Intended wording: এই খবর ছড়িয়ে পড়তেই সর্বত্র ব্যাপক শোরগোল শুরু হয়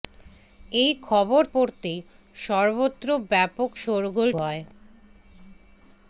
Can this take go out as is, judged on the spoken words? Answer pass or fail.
fail